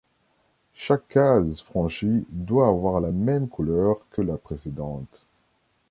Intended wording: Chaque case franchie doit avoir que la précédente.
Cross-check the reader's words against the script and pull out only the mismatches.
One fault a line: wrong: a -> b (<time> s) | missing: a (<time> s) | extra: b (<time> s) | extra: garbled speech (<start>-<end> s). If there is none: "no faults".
extra: la même couleur (3.0 s)